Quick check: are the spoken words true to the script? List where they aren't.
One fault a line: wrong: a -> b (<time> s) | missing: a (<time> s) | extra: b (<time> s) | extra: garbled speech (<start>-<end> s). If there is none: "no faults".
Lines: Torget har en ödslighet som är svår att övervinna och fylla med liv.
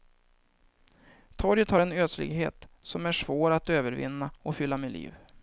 no faults